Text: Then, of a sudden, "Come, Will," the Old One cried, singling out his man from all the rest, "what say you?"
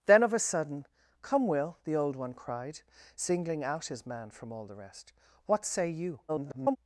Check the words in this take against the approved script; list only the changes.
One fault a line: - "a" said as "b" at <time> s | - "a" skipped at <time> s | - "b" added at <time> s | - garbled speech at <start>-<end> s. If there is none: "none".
- garbled speech at 6.3-6.8 s